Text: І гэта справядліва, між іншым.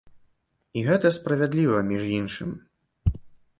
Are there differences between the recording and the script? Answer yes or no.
no